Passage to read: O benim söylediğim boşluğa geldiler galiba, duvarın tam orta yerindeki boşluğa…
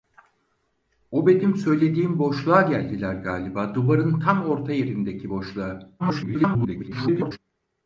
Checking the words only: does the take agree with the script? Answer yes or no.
no